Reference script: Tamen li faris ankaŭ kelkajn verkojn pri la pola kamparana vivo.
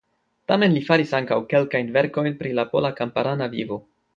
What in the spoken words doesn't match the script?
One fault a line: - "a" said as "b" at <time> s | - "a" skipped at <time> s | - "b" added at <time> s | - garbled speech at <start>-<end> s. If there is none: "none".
none